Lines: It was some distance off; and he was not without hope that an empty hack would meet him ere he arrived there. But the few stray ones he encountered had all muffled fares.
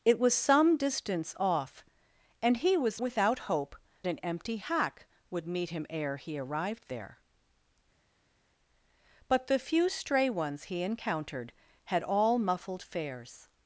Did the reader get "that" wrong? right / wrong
wrong